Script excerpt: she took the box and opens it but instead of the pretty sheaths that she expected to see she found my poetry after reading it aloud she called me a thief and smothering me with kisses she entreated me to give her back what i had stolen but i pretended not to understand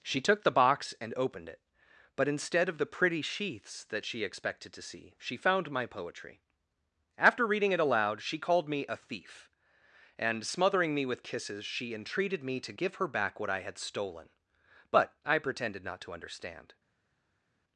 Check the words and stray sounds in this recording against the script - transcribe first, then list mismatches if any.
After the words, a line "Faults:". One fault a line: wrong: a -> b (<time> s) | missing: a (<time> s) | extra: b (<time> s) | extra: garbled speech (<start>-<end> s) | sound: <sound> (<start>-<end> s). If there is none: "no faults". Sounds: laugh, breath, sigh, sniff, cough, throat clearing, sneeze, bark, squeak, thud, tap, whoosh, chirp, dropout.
she took the box and opened it but instead of the pretty sheaths that she expected to see she found my poetry after reading it aloud she called me a thief and smothering me with kisses she entreated me to give her back what i had stolen but i pretended not to understand
Faults:
wrong: opens -> opened (1.2 s)